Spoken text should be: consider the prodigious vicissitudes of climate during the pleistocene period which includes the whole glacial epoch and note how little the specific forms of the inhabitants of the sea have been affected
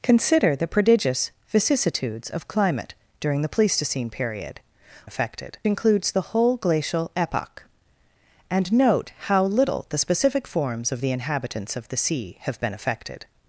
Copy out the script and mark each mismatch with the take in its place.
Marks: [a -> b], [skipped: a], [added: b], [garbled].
consider the prodigious vicissitudes of climate during the pleistocene period [which -> affected] includes the whole glacial epoch and note how little the specific forms of the inhabitants of the sea have been affected